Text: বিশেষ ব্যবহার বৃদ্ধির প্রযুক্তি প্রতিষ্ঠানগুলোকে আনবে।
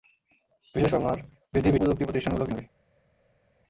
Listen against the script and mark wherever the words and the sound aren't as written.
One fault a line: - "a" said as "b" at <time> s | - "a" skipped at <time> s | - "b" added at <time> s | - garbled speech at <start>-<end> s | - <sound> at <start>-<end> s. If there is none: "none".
none